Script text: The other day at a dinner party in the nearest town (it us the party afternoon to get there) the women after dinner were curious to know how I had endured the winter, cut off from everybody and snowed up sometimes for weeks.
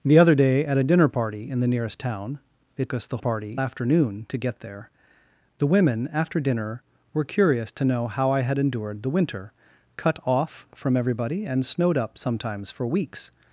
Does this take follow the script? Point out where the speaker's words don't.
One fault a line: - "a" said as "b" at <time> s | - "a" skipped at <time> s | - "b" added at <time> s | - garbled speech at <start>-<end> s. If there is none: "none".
none